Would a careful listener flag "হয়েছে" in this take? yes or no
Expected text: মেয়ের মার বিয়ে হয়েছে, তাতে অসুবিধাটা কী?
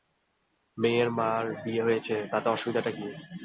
no